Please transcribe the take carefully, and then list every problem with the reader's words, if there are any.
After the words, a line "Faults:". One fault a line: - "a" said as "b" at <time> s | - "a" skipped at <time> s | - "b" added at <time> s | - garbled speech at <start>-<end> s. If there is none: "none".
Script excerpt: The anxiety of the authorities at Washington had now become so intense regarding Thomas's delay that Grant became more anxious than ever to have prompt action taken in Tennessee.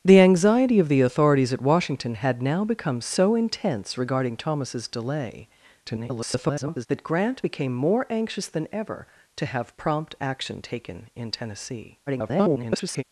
The anxiety of the authorities at Washington had now become so intense regarding Thomas's delay [garbled] that Grant became more anxious than ever to have prompt action taken in Tennessee. [garbled]
Faults:
- garbled speech at 5.9-6.9 s
- garbled speech at 12.1-13.0 s